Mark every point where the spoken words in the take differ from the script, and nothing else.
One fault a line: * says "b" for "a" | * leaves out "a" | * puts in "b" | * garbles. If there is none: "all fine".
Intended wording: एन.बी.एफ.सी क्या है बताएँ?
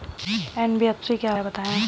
all fine